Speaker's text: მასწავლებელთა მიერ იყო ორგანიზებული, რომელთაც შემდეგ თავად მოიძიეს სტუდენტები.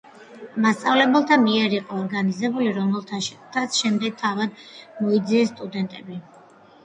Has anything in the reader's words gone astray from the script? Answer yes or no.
no